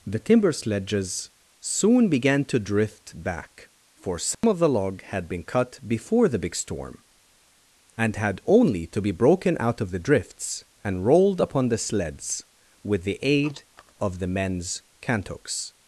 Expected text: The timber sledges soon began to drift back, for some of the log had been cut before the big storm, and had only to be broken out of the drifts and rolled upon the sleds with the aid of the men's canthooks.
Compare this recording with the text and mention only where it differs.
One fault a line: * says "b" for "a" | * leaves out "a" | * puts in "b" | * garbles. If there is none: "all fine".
all fine